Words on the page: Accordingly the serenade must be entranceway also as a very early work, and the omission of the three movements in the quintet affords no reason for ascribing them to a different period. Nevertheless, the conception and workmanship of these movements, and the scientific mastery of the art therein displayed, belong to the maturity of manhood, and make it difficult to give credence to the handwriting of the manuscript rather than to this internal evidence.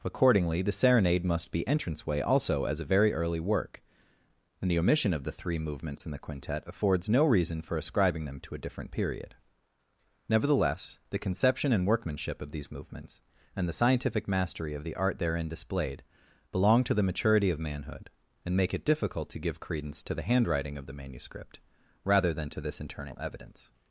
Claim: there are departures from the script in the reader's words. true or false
false